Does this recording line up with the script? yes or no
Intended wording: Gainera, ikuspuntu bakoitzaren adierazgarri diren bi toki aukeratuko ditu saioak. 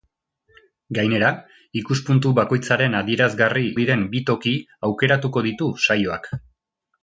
yes